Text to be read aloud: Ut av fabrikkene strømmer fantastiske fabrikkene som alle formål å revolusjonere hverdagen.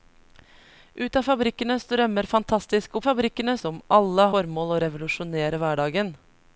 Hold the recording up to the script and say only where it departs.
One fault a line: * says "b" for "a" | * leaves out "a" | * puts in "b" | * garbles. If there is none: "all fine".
all fine